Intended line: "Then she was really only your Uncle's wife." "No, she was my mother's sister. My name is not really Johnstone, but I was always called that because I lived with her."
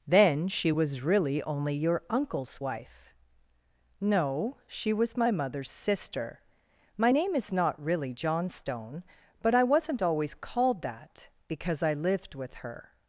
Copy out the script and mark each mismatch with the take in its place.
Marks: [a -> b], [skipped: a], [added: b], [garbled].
"Then she was really only your Uncle's wife." "No, she was my mother's sister. My name is not really Johnstone, but I [was -> wasn't] always called that because I lived with her."